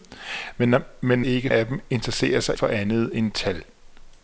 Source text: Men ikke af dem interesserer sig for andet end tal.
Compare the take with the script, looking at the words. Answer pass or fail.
pass